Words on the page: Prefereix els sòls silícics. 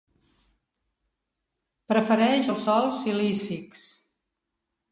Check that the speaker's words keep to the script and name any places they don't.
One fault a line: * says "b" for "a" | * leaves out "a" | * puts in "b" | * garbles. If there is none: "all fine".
all fine